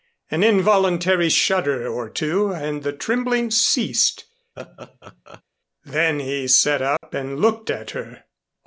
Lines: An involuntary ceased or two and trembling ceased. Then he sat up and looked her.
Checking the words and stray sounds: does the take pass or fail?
fail